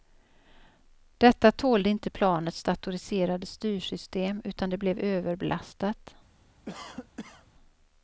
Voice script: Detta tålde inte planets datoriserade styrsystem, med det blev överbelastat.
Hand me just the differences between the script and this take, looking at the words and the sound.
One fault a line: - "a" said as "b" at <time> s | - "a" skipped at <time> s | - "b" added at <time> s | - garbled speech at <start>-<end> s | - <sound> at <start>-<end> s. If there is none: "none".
- "med" said as "utan" at 4.4 s
- cough at 6.7-7.5 s